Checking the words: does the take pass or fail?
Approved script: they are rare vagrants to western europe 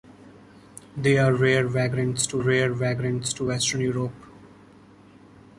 fail